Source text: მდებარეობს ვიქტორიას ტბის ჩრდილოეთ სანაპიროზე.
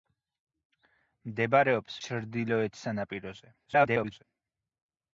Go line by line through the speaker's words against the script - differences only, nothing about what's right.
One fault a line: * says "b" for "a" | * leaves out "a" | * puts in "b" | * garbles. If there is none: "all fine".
* leaves out "ვიქტორიას ტბის"
* garbles